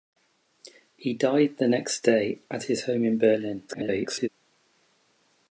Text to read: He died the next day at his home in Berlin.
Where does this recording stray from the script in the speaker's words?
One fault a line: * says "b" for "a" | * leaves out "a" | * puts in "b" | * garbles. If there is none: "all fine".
* garbles